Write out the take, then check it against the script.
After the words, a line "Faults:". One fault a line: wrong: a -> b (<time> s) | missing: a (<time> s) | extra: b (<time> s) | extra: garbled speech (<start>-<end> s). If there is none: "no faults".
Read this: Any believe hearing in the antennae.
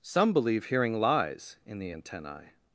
Some believe hearing lies in the antennae.
Faults:
wrong: Any -> Some (0.0 s)
extra: lies (1.0 s)